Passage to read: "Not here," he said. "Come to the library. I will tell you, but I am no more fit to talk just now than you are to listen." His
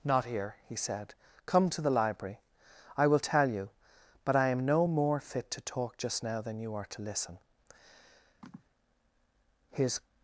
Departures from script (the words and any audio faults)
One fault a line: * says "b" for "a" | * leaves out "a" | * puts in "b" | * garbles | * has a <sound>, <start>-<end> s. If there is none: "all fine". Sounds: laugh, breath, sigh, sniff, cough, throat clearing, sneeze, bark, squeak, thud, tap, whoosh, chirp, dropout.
* has a sigh, 8.4-8.6 s